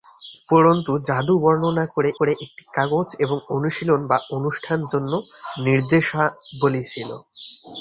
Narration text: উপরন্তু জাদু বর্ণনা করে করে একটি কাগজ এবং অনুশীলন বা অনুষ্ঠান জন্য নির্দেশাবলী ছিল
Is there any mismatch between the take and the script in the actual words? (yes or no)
no